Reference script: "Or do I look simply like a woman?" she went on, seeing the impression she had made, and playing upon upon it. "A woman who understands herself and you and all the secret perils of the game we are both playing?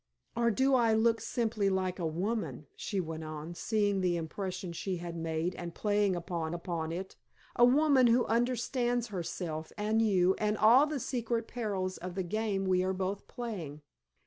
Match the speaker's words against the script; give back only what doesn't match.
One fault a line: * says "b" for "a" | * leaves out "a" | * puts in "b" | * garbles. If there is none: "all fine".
all fine